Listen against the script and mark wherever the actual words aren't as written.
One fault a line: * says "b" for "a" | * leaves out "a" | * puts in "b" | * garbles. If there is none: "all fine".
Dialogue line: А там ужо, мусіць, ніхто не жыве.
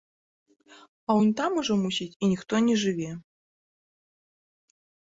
* puts in "унь"
* puts in "і"